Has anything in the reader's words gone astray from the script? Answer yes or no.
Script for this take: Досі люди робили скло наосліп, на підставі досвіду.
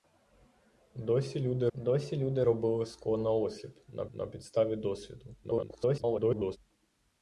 yes